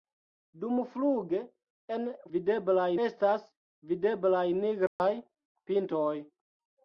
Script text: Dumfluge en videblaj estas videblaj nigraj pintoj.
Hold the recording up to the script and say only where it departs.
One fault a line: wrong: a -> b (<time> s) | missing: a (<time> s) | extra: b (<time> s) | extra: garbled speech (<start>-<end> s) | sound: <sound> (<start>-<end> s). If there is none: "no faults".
sound: dropout (4.9-5.0 s)